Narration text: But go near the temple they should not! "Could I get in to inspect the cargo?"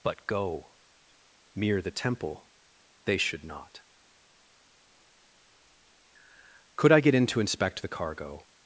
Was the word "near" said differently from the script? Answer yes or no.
yes